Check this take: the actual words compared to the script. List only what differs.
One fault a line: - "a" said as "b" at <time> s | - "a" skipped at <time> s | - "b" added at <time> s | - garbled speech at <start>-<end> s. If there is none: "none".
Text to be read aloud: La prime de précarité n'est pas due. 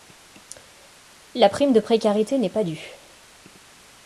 none